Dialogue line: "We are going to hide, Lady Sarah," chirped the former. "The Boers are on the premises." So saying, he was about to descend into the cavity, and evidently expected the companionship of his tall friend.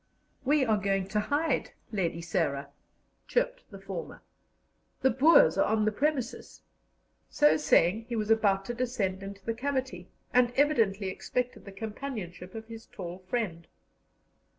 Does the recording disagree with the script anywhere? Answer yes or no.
no